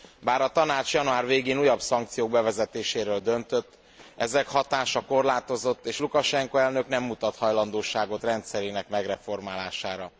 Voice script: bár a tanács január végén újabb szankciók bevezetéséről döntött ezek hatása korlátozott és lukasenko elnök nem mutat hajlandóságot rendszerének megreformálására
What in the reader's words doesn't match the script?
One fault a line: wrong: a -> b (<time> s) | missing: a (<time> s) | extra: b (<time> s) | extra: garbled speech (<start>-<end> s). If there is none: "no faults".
no faults